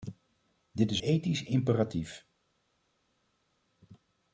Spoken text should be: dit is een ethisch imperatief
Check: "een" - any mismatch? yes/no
yes